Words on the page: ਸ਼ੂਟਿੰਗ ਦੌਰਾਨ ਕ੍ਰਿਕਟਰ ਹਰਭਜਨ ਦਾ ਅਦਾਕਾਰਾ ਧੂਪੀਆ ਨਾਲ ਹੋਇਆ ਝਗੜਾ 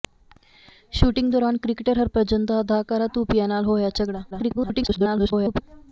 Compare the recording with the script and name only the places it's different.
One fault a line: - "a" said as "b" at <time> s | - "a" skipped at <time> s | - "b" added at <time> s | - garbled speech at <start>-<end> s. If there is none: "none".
- garbled speech at 4.3-5.6 s